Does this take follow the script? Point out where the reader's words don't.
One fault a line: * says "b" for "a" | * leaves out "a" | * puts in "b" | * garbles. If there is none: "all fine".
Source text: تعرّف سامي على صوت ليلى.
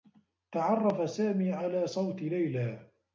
all fine